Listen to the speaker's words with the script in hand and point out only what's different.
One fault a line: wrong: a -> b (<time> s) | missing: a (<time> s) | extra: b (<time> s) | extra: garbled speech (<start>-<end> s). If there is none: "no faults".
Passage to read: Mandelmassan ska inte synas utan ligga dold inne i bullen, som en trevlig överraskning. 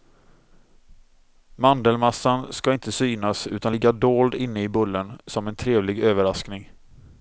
no faults